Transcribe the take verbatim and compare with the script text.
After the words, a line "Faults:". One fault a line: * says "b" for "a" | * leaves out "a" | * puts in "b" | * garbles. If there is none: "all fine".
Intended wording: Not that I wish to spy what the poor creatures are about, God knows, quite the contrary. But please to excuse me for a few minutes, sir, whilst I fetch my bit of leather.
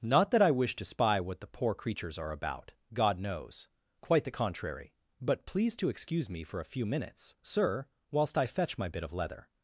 Not that I wish to spy what the poor creatures are about, God knows, quite the contrary. But please to excuse me for a few minutes, sir, whilst I fetch my bit of leather.
Faults:
all fine